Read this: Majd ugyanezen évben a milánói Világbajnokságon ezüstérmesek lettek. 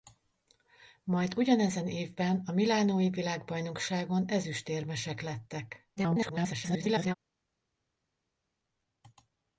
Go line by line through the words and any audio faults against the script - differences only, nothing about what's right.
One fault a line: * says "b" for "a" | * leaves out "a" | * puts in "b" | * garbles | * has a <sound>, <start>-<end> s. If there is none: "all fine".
* garbles